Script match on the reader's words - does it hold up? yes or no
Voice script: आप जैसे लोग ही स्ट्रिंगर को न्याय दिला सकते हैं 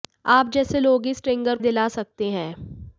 no